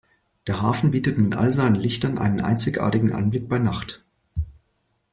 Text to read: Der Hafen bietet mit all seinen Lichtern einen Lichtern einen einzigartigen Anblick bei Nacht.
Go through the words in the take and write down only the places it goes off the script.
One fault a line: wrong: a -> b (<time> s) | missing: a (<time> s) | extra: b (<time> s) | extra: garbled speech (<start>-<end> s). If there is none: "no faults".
missing: Lichtern einen (2.4 s)